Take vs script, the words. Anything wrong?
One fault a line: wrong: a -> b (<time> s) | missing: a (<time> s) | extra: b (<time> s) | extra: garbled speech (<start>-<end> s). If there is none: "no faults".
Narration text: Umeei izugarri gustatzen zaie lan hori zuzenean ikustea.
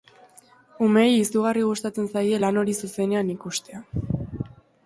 no faults